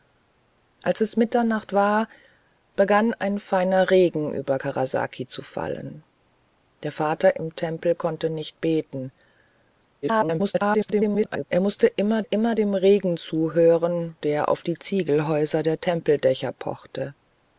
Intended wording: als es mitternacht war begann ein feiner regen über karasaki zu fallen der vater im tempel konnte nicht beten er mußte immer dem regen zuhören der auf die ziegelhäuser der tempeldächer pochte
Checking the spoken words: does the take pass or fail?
fail